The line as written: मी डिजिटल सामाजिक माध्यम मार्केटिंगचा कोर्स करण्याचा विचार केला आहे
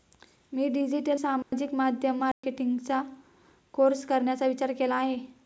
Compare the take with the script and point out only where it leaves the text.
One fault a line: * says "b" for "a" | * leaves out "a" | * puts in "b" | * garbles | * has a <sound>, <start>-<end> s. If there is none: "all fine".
* has a dropout, 1.4-1.5 s
* has a dropout, 2.3-2.4 s